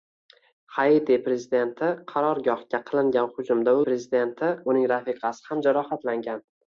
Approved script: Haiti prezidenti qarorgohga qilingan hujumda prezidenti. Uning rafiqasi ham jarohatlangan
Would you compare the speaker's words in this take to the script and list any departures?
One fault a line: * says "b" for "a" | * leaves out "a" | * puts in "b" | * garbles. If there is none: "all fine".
all fine